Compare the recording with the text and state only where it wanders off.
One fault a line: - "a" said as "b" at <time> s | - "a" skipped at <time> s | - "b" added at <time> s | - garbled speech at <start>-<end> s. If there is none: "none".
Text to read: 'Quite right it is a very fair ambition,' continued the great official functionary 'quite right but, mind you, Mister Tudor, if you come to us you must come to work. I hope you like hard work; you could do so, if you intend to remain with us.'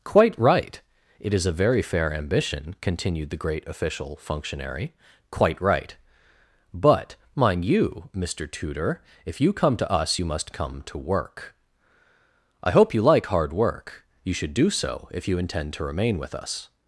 - "could" said as "should" at 14.3 s